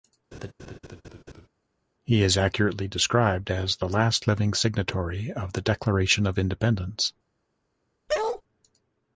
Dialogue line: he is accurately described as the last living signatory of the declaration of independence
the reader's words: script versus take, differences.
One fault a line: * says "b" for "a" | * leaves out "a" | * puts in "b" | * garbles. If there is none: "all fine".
all fine